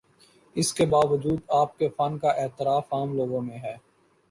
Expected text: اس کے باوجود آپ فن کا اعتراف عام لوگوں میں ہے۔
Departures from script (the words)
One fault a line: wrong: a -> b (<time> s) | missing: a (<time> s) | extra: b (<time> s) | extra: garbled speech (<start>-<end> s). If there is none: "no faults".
extra: کے (1.8 s)